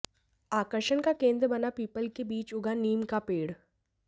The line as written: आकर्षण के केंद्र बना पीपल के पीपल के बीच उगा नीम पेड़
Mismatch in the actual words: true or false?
true